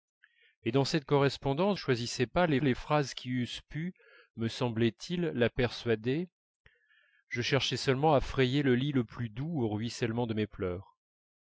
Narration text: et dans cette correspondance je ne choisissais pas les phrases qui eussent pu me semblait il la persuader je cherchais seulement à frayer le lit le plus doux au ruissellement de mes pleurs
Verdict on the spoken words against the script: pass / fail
fail